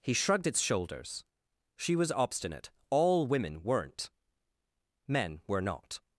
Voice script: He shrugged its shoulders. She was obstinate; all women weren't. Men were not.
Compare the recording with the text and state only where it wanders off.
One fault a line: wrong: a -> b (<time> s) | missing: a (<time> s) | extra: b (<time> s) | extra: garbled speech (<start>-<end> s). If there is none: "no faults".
no faults